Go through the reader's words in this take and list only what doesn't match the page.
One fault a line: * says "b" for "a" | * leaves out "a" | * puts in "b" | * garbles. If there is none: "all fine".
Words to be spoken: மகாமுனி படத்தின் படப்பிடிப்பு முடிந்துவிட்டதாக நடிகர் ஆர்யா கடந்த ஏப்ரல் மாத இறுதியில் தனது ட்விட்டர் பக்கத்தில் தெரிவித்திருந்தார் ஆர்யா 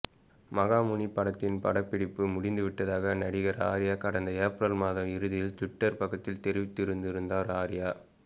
* leaves out "தனது"